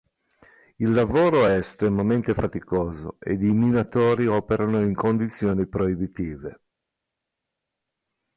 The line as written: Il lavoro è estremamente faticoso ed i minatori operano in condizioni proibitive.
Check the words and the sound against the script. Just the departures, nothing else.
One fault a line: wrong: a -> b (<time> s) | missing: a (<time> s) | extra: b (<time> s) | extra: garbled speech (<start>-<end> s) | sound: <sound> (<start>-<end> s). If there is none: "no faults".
no faults